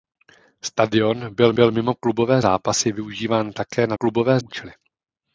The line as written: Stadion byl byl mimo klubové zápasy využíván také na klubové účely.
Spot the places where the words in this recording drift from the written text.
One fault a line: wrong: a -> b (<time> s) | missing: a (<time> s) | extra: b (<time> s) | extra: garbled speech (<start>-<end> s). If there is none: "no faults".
no faults